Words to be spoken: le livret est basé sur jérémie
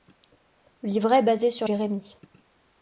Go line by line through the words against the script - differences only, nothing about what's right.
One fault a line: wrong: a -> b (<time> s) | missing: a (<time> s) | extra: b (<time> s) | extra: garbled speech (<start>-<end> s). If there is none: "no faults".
no faults